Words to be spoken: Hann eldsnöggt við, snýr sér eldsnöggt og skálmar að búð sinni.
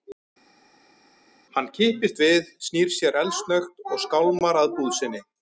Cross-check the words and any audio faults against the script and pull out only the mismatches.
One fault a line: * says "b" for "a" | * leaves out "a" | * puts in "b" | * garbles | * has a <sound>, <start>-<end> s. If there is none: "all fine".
* says "kippist" for "eldsnöggt"